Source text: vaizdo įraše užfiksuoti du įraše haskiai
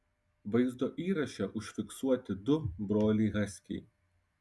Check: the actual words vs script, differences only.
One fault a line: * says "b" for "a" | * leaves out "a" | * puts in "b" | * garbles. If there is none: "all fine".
* says "broliai" for "įraše"